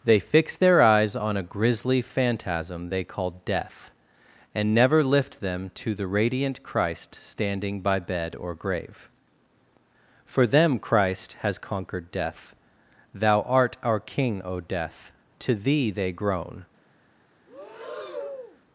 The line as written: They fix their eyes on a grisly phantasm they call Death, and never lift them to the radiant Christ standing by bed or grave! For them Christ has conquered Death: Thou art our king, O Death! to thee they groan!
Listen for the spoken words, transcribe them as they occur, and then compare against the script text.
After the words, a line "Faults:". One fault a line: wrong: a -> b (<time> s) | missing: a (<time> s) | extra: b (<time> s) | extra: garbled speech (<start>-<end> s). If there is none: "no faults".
They fix their eyes on a grisly phantasm they call Death, and never lift them to the radiant Christ standing by bed or grave! For them Christ has conquered Death: Thou art our king, O Death! to thee they groan!
Faults:
no faults